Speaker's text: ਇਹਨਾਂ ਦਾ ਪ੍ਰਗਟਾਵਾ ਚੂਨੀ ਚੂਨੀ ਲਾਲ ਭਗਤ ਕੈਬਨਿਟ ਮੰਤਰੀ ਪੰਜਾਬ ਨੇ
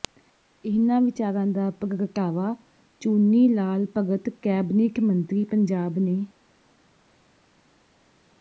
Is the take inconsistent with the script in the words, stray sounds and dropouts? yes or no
yes